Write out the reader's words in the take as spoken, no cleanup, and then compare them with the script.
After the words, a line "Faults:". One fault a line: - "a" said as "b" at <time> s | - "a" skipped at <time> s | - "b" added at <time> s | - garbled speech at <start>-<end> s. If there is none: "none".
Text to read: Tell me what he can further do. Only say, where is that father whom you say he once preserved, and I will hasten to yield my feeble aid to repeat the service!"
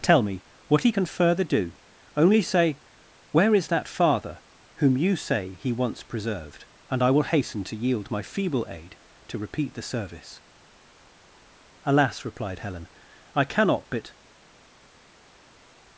Tell me what he can further do. Only say, where is that father whom you say he once preserved, and I will hasten to yield my feeble aid to repeat the service!" "Alas!" replied Helen, "I cannot but
Faults:
- "Alas replied Helen I cannot but" added at 11.9 s